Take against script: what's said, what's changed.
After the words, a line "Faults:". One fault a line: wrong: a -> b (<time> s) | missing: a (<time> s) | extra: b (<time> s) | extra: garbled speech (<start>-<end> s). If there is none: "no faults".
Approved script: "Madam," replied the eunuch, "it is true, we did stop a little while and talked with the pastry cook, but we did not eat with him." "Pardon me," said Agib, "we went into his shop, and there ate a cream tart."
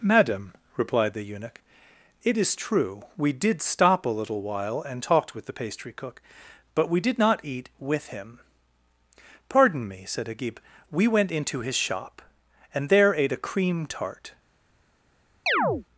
"Madam," replied the eunuch, "it is true, we did stop a little while and talked with the pastry cook, but we did not eat with him." "Pardon me," said Agib, "we went into his shop, and there ate a cream tart."
Faults:
no faults